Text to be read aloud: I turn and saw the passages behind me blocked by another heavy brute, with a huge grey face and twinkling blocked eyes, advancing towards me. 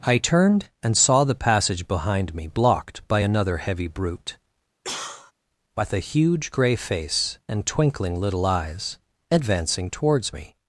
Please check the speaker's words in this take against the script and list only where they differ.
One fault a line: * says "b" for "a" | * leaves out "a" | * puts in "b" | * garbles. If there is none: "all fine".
* says "turned" for "turn"
* says "passage" for "passages"
* says "little" for "blocked"